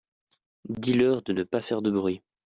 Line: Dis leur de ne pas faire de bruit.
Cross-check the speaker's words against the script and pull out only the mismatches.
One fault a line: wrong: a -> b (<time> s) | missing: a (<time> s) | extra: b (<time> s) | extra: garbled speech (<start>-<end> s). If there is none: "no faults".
no faults